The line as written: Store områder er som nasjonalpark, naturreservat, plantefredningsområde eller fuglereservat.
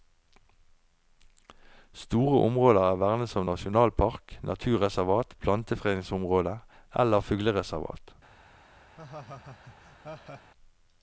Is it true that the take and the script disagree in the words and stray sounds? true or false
true